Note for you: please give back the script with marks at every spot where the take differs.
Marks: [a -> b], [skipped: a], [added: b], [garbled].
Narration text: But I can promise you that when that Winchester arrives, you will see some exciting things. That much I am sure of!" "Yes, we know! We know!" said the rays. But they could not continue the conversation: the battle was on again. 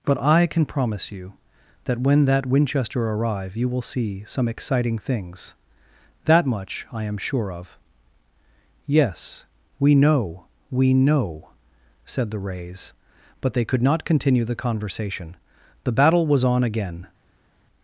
But I can promise you that when that Winchester [arrives, -> arrive] you will see some exciting things. That much I am sure of!" "Yes, we know! We know!" said the rays. But they could not continue the conversation: the battle was on again.